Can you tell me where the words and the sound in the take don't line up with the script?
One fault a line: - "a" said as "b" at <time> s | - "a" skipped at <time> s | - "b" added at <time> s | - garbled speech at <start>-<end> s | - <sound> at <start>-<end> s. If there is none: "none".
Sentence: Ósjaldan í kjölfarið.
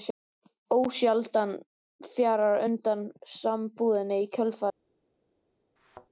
- "fjarar undan sambúðinni" added at 2.1 s
- thud at 5.8-6.1 s